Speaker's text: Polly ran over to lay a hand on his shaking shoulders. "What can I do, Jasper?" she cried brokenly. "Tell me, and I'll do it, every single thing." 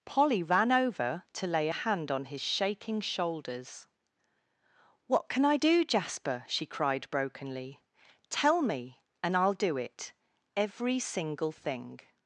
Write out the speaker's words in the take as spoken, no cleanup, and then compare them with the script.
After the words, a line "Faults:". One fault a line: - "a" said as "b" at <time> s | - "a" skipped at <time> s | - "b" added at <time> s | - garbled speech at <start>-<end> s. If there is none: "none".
Polly ran over to lay a hand on his shaking shoulders. "What can I do, Jasper?" she cried brokenly. "Tell me, and I'll do it, every single thing."
Faults:
none